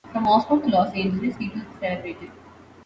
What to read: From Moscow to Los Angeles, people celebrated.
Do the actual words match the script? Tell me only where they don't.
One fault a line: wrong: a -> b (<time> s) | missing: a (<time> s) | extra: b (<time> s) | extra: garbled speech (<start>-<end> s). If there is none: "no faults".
no faults